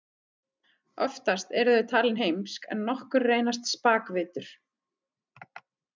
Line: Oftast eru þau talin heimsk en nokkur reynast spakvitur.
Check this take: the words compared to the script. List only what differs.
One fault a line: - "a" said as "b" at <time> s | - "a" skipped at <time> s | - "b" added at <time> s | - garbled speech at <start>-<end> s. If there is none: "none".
none